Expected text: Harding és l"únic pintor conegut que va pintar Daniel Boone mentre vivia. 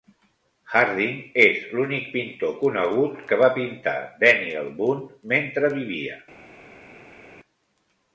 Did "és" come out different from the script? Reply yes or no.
no